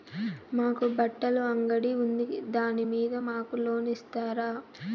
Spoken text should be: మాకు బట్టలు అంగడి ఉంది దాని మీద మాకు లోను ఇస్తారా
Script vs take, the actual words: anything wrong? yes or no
no